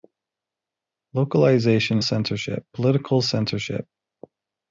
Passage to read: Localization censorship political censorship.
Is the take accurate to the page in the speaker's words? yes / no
yes